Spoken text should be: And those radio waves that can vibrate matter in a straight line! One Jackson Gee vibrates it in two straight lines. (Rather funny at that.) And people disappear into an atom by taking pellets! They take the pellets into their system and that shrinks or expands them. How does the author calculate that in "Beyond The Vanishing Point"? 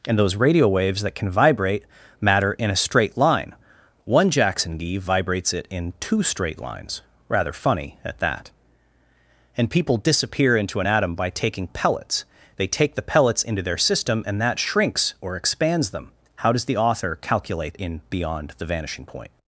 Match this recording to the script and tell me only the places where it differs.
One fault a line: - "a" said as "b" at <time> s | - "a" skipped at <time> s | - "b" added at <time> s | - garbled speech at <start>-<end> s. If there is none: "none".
- "that" skipped at 17.8 s